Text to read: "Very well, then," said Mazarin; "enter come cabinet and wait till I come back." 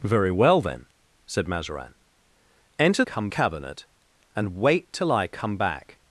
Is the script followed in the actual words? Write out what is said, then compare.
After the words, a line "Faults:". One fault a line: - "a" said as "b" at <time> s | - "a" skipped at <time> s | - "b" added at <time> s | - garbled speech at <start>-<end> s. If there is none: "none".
"Very well, then," said Mazarin; "enter come cabinet and wait till I come back."
Faults:
none